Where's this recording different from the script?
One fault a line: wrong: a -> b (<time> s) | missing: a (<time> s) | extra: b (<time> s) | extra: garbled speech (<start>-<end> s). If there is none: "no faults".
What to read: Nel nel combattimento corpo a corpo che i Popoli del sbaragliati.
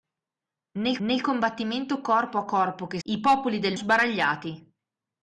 no faults